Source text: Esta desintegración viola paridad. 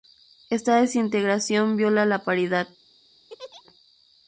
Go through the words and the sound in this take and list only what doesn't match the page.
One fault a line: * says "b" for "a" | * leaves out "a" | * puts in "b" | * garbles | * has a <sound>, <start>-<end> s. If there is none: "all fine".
* puts in "la"
* has a laugh, 3.3-3.6 s